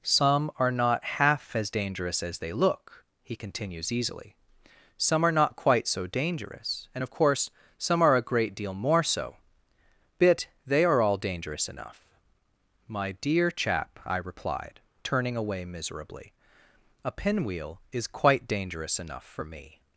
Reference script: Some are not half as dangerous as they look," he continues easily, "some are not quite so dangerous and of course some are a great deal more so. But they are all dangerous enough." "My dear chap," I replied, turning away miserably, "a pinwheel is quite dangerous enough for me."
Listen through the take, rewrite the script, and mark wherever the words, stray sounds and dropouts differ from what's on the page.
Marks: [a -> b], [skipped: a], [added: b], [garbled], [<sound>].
Some are not half as dangerous as they look," he continues easily, "some are not quite so dangerous and of course some are a great deal more so. [But -> Bit] they are all dangerous enough." "My dear chap," I replied, turning away miserably, "a pinwheel is quite dangerous enough for me."